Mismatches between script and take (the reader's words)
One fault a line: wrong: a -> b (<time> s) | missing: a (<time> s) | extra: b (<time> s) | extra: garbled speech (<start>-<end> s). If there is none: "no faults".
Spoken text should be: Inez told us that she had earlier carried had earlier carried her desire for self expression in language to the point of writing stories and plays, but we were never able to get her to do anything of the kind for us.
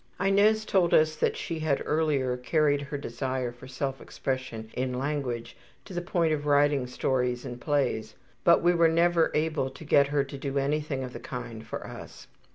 missing: had earlier carried (2.8 s)